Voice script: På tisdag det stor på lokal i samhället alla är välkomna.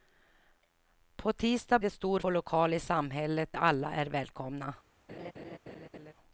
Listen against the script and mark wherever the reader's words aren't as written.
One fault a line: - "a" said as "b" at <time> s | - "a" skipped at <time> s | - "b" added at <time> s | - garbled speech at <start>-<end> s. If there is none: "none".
none